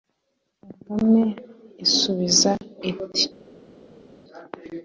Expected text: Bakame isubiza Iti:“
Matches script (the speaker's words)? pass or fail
pass